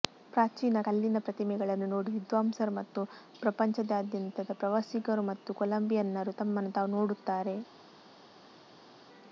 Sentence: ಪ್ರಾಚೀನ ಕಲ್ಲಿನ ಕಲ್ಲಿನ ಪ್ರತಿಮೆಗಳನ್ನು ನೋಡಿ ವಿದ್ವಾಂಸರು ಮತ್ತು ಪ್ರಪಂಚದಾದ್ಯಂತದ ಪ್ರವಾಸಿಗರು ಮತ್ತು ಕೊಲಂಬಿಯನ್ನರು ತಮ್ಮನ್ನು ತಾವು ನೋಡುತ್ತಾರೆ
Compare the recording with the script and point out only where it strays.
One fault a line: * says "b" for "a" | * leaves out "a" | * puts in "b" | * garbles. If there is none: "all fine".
* leaves out "ಕಲ್ಲಿನ"